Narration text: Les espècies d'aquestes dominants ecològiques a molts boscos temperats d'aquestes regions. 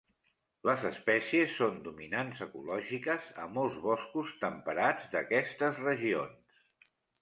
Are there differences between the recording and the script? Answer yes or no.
yes